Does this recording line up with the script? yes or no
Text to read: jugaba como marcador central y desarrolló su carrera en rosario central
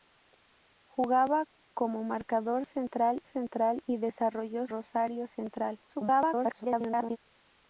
no